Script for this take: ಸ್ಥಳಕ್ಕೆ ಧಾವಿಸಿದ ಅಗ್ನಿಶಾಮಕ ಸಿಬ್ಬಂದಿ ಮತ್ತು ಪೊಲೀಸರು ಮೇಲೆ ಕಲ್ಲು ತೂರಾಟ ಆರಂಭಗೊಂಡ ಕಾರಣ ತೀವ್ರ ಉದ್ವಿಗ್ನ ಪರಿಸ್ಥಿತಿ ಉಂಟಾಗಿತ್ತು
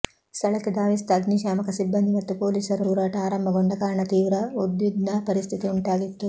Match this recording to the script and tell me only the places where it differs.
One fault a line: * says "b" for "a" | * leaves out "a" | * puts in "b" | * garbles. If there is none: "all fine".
* leaves out "ಮೇಲೆ ಕಲ್ಲು"